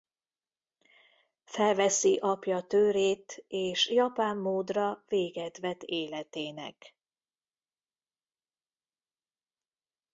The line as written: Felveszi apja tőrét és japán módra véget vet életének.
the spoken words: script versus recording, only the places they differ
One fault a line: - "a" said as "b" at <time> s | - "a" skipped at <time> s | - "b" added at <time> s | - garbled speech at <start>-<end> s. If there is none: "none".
none